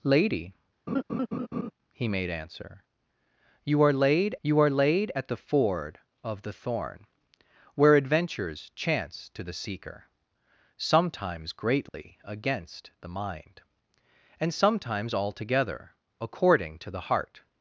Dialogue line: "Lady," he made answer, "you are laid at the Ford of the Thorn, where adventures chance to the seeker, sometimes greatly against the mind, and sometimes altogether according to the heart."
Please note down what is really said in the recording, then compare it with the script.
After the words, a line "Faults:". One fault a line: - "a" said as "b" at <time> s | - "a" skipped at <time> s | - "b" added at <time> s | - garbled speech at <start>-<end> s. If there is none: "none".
"Lady," he made answer, "you are laid you are laid at the Ford of the Thorn, where adventures chance to the seeker, sometimes greatly against the mind, and sometimes altogether according to the heart."
Faults:
- "you are laid" added at 4.4 s